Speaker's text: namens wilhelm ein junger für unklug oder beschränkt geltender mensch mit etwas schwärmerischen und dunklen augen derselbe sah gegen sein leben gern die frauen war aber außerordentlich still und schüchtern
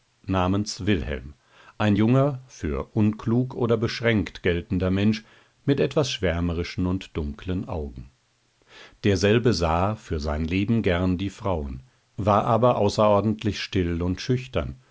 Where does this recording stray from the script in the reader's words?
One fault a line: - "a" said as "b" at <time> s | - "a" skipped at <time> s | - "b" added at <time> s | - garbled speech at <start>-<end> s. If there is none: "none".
- "gegen" said as "für" at 10.0 s